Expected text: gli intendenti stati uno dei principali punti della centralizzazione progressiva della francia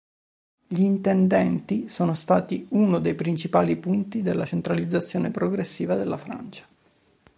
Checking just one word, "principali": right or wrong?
right